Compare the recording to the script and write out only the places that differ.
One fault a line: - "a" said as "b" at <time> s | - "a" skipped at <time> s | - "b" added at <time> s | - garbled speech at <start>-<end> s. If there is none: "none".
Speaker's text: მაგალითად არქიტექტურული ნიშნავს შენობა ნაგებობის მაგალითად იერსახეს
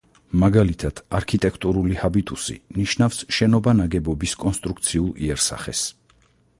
- "ჰაბიტუსი" added at 2.0 s
- "მაგალითად" said as "კონსტრუქციულ" at 4.5 s